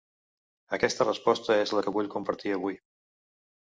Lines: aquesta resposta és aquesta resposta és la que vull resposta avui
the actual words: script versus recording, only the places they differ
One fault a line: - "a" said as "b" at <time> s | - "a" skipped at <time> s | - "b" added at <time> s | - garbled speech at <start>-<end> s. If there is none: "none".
- "aquesta resposta és" skipped at 1.8 s
- "resposta" said as "compartir" at 2.2 s